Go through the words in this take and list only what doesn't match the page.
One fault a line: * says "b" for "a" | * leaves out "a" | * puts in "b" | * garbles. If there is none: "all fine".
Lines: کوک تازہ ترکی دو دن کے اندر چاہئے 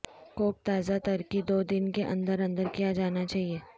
* puts in "اندر کیا جانا"